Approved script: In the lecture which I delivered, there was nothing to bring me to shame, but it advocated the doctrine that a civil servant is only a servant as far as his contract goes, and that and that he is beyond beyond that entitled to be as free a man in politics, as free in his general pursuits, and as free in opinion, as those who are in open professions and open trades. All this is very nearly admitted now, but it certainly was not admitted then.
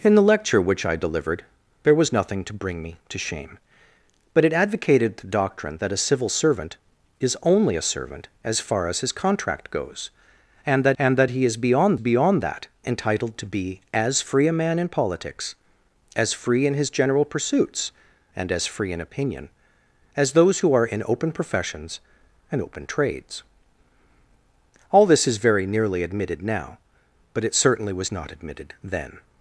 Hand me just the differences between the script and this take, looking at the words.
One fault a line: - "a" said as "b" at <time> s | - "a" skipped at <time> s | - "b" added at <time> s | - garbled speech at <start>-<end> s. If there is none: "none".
none